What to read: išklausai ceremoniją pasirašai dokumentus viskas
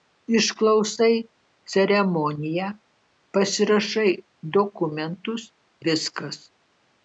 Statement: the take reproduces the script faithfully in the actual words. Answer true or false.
true